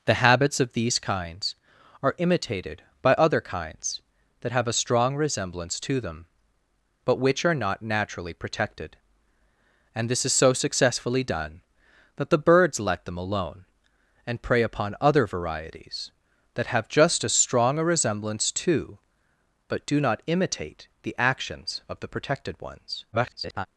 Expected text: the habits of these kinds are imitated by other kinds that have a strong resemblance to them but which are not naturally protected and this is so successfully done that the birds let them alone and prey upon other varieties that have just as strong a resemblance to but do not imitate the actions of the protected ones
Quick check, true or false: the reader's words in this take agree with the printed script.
false